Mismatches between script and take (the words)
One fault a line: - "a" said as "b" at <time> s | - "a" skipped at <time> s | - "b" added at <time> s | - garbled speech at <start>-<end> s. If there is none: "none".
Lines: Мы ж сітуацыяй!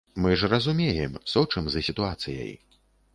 - "разумеем сочым за" added at 0.5 s